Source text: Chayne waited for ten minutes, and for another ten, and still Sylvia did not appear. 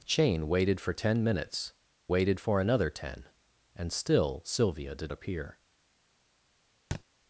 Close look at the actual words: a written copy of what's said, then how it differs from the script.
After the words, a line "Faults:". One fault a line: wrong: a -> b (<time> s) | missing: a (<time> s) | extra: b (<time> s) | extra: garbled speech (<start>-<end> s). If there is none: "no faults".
Chayne waited for ten minutes, waited for another ten, and still Sylvia did appear.
Faults:
wrong: and -> waited (2.1 s)
missing: not (5.1 s)